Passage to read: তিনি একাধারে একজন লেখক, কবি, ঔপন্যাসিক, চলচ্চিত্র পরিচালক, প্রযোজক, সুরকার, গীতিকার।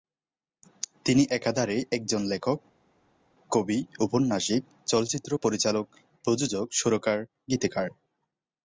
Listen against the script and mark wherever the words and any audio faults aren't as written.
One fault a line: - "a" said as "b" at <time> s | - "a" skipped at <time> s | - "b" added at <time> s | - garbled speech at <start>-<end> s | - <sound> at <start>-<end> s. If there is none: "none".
none